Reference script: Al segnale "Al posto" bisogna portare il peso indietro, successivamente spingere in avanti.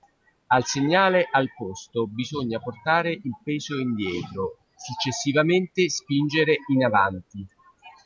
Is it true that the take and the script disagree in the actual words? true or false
false